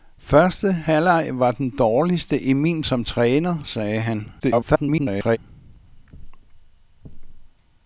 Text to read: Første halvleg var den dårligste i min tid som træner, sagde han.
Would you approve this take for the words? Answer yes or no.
no